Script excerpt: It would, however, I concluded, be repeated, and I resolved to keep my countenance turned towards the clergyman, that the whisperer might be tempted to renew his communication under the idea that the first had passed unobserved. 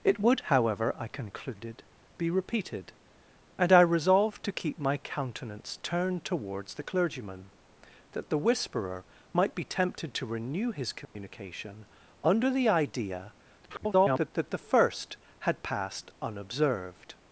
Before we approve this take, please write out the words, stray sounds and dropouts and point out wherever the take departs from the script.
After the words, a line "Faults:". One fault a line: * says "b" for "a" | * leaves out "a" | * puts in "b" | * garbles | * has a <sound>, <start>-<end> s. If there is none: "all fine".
It would, however, I concluded, be repeated, and I resolved to keep my countenance turned towards the clergyman, that the whisperer might be tempted to renew his communication under the idea [garbled] that the first had passed unobserved.
Faults:
* has a dropout, 11.0-11.2 s
* garbles